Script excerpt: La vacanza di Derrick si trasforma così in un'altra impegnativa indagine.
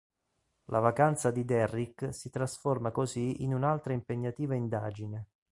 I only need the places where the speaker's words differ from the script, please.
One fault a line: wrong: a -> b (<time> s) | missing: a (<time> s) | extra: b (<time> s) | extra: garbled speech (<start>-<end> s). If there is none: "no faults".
no faults